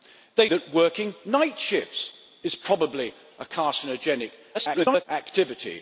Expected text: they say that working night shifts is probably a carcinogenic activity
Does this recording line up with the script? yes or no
no